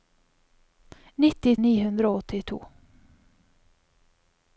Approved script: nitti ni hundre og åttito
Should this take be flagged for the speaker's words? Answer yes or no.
no